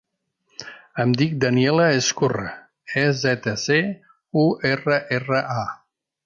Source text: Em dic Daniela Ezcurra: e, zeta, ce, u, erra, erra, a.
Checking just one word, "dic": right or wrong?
right